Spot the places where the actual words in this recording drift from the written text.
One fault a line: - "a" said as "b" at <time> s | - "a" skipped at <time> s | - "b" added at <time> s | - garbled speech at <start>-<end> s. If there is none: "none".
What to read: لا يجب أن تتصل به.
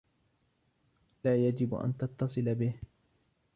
none